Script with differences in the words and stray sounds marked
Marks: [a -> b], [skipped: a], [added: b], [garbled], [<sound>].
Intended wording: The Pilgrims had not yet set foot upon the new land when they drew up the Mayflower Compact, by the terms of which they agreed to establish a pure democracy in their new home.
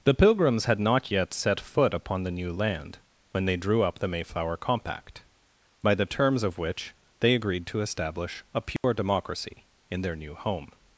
The Pilgrims had not yet set foot upon the new land when they drew up the Mayflower Compact, by the terms of which they agreed to establish a pure [dropout] democracy in their new home.